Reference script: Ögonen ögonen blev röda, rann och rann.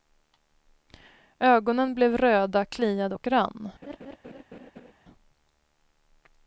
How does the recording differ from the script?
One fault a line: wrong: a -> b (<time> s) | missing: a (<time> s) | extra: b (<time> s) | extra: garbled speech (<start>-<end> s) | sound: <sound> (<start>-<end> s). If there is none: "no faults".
missing: ögonen (1.9 s)
wrong: rann -> kliade (2.6 s)
sound: laugh (3.8-4.9 s)